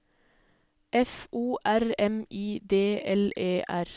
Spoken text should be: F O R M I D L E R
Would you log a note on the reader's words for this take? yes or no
no